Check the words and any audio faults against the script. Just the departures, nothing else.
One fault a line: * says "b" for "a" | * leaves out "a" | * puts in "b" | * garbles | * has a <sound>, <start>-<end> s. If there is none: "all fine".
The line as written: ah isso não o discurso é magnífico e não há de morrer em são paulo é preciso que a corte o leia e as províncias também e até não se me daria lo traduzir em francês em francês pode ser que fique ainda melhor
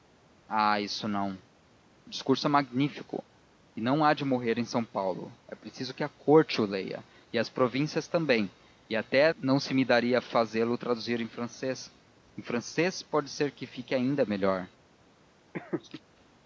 * puts in "fazê"
* has a laugh, 15.5-16.0 s